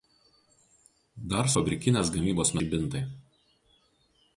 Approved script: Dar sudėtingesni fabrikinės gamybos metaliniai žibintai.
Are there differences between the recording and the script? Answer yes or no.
yes